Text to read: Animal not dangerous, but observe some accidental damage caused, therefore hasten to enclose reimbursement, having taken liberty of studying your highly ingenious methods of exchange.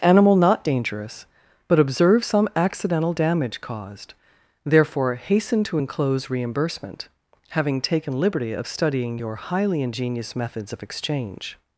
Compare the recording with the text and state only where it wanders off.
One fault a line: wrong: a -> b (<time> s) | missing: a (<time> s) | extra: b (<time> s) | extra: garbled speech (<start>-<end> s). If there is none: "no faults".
no faults